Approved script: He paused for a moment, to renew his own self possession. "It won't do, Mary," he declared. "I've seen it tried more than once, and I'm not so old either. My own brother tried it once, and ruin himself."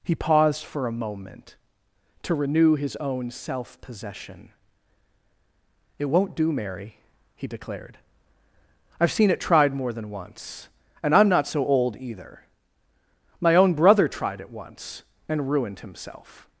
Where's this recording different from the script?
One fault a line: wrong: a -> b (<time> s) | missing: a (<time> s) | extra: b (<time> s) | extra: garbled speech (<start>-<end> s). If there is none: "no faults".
wrong: ruin -> ruined (15.5 s)